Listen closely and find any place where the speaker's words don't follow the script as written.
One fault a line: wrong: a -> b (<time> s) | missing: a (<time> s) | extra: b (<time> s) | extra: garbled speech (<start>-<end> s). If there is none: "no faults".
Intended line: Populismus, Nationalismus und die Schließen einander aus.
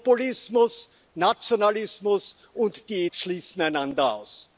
no faults